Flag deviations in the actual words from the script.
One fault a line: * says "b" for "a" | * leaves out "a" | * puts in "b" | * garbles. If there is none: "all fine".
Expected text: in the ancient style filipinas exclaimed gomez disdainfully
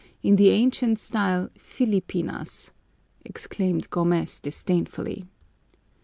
all fine